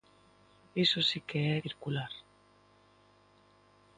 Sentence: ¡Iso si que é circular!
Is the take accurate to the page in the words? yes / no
yes